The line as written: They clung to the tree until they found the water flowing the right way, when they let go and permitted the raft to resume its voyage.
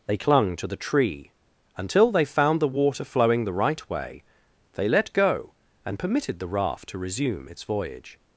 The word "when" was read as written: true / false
false